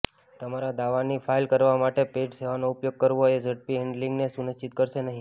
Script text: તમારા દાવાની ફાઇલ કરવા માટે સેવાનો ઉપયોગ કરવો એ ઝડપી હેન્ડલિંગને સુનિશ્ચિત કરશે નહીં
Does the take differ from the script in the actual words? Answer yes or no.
yes